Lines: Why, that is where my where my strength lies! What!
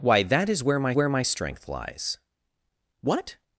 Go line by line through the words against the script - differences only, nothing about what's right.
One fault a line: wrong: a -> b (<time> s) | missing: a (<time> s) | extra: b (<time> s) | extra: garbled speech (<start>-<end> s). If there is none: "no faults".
no faults